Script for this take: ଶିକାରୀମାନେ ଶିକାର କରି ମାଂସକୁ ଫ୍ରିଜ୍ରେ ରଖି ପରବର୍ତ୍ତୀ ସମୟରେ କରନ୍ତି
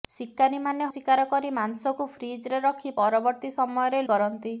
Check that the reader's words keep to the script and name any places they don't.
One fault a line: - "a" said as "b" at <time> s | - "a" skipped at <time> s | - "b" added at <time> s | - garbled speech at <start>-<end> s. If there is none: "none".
none